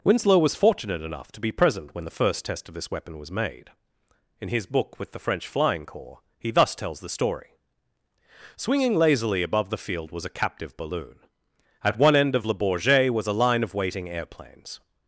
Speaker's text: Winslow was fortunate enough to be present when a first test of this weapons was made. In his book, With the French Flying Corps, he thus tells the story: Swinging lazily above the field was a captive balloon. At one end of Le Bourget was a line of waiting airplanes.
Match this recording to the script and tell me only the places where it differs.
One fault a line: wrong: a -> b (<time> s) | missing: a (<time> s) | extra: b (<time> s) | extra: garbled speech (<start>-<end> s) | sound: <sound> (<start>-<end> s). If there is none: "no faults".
wrong: a -> the (2.0 s)
wrong: weapons -> weapon (2.9 s)